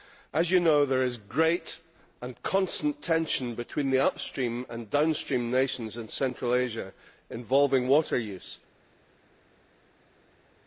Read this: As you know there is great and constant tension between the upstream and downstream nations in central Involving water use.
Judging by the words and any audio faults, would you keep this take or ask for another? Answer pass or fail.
fail